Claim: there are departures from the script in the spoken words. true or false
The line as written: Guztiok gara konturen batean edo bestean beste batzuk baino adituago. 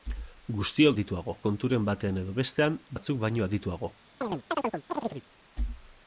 true